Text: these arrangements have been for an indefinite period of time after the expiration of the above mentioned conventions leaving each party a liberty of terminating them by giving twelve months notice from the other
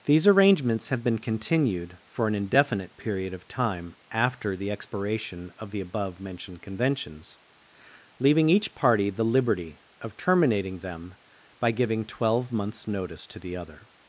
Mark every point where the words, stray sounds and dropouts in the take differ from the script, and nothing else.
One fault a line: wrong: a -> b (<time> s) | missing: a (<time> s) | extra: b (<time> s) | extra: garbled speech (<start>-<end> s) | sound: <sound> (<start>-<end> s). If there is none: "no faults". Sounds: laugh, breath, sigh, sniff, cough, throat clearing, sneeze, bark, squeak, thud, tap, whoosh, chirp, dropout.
extra: continued (1.2 s)
wrong: a -> the (9.1 s)
wrong: from -> to (13.3 s)